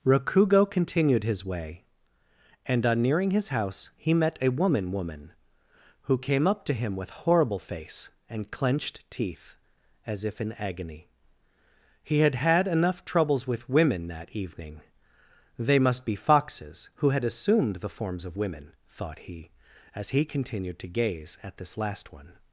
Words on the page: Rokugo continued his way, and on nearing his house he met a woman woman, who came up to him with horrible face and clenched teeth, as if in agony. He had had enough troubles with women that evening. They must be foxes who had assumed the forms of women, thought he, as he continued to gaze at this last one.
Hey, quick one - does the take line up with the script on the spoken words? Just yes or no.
yes